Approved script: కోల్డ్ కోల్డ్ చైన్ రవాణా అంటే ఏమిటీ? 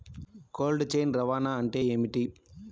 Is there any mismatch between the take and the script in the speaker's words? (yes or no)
yes